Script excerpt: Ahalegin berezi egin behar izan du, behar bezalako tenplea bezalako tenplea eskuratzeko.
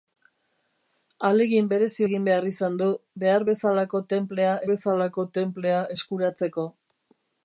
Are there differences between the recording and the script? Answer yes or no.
no